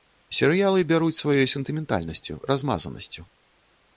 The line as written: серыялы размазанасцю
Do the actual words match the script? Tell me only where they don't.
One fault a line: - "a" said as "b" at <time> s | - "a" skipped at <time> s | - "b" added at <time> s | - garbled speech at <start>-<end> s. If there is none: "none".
- "бяруць сваёй сентыментальнасцю" added at 0.9 s